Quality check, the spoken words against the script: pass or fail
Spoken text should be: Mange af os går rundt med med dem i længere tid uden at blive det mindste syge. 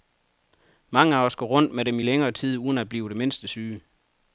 fail